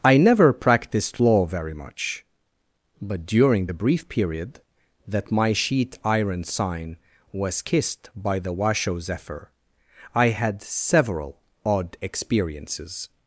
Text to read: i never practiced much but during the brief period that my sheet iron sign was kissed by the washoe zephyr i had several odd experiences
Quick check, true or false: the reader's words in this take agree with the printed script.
false